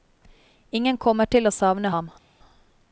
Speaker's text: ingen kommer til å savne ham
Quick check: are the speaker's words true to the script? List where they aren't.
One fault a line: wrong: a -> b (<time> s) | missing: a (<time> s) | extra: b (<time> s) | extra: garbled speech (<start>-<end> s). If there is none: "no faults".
no faults